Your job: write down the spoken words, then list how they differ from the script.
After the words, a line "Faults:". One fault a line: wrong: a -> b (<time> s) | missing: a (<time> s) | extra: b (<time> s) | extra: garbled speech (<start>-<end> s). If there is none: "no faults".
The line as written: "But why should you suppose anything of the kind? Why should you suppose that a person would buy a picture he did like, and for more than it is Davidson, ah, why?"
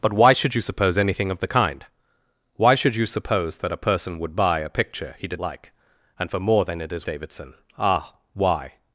"But why should you suppose anything of the kind? Why should you suppose that a person would buy a picture he did like, and for more than it is Davidson, ah, why?"
Faults:
no faults